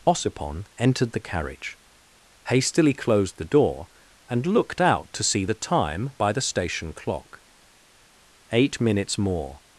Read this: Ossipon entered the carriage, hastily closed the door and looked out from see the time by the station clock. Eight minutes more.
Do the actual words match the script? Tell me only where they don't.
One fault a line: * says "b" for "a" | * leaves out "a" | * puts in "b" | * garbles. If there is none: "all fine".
* says "to" for "from"